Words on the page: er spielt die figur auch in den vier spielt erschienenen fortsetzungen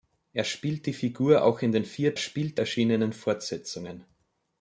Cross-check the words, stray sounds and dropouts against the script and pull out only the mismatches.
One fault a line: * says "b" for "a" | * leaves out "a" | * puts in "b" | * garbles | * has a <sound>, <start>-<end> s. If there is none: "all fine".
all fine